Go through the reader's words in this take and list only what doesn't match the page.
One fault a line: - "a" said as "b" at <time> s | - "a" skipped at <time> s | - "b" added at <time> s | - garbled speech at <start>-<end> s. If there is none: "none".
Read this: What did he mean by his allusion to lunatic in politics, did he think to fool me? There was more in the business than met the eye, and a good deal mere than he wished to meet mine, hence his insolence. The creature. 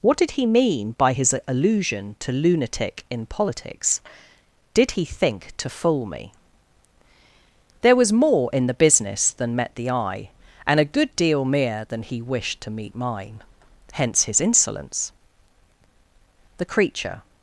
none